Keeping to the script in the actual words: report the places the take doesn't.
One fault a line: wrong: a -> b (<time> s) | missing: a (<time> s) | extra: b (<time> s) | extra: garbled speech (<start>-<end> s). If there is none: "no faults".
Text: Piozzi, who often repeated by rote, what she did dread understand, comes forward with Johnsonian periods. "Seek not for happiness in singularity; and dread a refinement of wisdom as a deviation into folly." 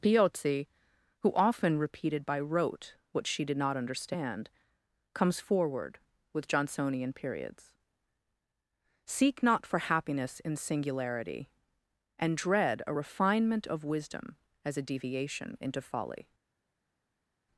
wrong: dread -> not (3.6 s)